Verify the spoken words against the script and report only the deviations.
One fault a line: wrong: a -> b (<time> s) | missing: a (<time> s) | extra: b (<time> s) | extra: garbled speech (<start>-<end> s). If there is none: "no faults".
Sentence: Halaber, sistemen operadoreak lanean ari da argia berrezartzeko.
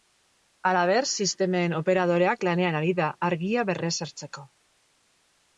no faults